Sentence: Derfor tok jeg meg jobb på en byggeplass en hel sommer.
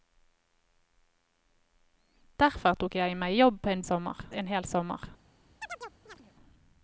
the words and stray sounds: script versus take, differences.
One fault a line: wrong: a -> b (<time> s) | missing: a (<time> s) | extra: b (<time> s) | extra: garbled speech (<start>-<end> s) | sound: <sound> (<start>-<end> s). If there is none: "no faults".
wrong: byggeplass -> sommer (3.9 s)
sound: chirp (5.6-6.3 s)